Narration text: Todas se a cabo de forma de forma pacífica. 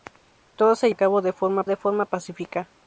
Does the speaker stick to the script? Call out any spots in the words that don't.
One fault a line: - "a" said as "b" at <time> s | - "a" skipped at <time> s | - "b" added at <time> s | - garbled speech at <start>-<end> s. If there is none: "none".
none